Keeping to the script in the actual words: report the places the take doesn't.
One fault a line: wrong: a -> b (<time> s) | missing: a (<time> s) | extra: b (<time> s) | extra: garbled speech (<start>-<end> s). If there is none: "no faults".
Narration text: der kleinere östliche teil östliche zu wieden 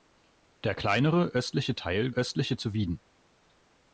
no faults